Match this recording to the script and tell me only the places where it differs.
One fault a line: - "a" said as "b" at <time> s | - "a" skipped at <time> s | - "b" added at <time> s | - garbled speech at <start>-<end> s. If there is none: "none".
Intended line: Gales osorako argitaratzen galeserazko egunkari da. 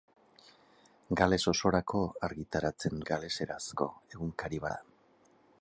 none